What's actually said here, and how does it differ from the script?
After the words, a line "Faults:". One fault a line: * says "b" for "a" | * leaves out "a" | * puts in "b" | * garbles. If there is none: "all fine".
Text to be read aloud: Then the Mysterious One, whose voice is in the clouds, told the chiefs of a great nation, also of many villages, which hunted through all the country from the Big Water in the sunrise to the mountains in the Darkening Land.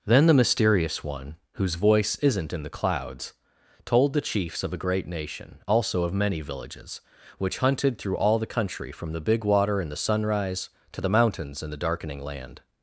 Then the Mysterious One, whose voice isn't in the clouds, told the chiefs of a great nation, also of many villages, which hunted through all the country from the Big Water in the sunrise to the mountains in the Darkening Land.
Faults:
* says "isn't" for "is"